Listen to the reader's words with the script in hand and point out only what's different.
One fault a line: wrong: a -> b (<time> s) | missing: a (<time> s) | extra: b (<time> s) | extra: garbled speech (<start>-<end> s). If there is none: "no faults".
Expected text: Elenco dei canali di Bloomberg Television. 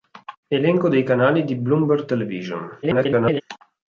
extra: garbled speech (2.8-3.4 s)